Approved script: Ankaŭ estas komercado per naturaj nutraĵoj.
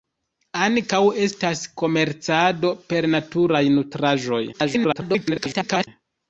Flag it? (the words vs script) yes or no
yes